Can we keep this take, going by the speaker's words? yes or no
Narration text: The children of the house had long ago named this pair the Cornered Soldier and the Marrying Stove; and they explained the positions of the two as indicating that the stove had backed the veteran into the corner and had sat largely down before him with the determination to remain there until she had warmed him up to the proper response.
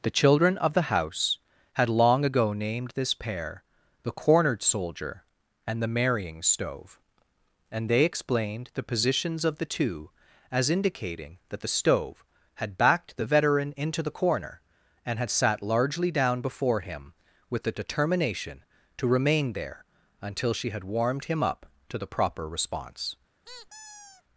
yes